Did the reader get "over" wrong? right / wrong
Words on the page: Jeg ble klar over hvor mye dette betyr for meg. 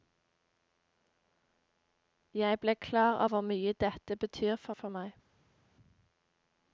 wrong